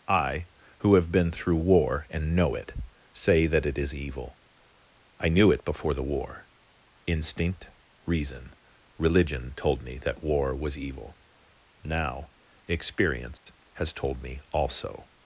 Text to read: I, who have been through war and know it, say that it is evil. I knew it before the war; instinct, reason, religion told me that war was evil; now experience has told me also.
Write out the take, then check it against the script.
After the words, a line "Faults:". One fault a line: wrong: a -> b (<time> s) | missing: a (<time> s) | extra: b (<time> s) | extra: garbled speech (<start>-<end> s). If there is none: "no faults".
I, who have been through war and know it, say that it is evil. I knew it before the war; instinct, reason, religion told me that war was evil; now experience has told me also.
Faults:
no faults